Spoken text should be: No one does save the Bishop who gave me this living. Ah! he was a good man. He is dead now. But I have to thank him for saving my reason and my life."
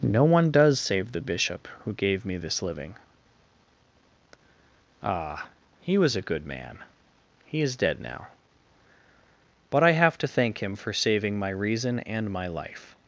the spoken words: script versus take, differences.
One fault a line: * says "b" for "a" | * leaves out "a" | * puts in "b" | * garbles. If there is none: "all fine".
all fine